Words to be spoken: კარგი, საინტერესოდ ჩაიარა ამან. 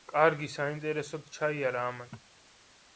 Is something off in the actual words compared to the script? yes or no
no